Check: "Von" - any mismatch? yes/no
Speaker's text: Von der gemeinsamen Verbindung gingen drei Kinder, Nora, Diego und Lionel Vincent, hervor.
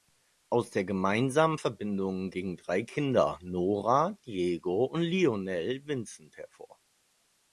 yes